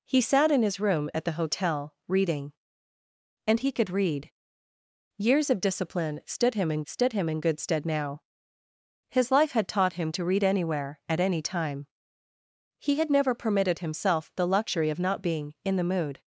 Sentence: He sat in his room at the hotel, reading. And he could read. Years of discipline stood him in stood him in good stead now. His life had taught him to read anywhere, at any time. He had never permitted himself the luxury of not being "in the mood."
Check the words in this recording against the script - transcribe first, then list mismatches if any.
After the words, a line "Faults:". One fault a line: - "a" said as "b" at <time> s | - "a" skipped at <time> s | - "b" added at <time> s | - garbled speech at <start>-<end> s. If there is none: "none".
He sat in his room at the hotel, reading. And he could read. Years of discipline stood him in stood him in good stead now. His life had taught him to read anywhere, at any time. He had never permitted himself the luxury of not being "in the mood."
Faults:
none